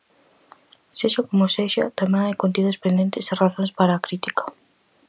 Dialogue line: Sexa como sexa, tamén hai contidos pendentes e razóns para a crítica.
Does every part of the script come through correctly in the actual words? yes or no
yes